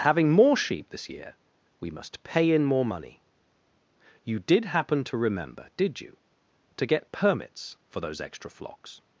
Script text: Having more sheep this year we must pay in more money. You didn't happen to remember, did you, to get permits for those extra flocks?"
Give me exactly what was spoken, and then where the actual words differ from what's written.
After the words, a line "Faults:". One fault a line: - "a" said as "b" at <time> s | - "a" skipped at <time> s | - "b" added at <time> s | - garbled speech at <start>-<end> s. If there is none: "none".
Having more sheep this year we must pay in more money. You did happen to remember, did you, to get permits for those extra flocks?"
Faults:
- "didn't" said as "did" at 4.4 s